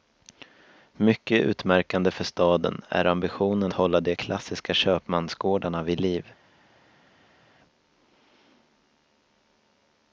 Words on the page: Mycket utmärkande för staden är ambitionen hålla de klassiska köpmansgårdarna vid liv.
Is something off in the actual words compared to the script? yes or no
no